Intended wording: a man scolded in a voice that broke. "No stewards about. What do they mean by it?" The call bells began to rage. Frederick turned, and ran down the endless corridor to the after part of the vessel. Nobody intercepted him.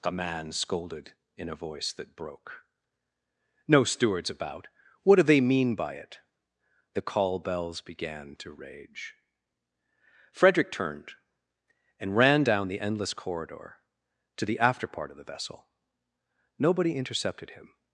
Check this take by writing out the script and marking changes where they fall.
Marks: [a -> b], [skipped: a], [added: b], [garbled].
a man scolded in a voice that broke. "No stewards about. What do they mean by it?" The call bells began to rage. Frederick turned, and ran down the endless corridor to the after part of the vessel. Nobody intercepted him.